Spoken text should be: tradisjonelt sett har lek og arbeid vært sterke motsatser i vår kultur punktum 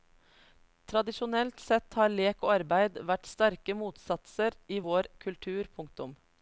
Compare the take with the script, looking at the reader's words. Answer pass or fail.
pass